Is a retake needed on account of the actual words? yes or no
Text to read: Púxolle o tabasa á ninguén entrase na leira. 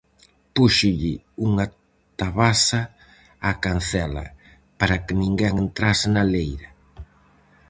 yes